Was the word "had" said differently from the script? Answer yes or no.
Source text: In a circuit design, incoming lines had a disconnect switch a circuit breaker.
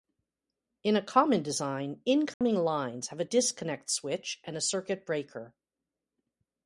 yes